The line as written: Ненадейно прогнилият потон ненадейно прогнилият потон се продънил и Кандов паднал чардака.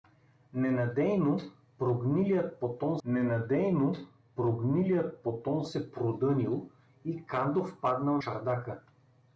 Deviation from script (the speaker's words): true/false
false